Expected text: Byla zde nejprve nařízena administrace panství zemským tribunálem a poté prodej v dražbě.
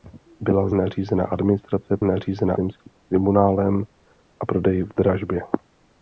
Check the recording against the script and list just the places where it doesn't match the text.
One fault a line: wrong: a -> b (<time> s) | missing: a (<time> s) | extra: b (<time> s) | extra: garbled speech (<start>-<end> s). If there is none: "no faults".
missing: zde nejprve (0.7 s)
wrong: panství -> nařízena (2.0 s)
missing: poté (4.5 s)